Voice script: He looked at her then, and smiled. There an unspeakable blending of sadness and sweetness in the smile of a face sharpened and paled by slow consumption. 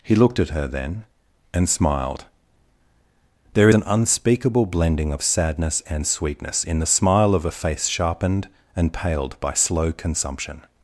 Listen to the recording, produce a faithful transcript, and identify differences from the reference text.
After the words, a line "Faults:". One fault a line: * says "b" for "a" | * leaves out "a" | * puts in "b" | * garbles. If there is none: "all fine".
He looked at her then, and smiled. There an unspeakable blending of sadness and sweetness in the smile of a face sharpened and paled by slow consumption.
Faults:
all fine